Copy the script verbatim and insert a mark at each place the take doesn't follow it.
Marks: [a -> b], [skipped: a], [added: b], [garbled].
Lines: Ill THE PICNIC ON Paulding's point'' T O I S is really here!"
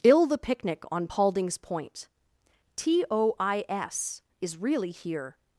Ill THE PICNIC ON Paulding's point'' T O I S is really here!"